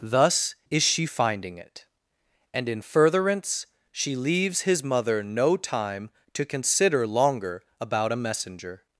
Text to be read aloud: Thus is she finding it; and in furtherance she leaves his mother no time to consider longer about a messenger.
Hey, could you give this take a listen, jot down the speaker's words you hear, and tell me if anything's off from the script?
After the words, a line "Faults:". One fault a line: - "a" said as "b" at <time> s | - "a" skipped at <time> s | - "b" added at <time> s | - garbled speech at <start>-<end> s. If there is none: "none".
Thus is she finding it; and in furtherance she leaves his mother no time to consider longer about a messenger.
Faults:
none